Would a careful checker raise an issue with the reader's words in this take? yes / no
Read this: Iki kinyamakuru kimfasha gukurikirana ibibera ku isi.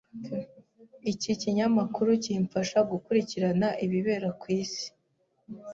no